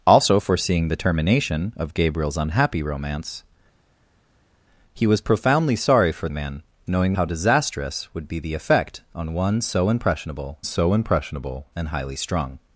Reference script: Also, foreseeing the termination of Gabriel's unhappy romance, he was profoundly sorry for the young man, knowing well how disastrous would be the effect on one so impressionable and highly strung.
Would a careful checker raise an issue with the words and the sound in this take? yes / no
yes